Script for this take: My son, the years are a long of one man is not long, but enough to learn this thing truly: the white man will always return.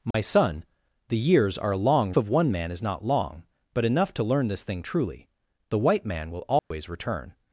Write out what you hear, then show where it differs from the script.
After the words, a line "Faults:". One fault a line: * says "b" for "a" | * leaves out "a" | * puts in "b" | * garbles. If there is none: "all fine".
My son, the years are a long of one man is not long, but enough to learn this thing truly: the white man will always return.
Faults:
all fine